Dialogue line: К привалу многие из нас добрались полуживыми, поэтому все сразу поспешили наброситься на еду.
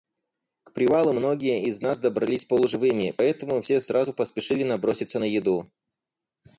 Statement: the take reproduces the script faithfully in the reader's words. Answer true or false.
true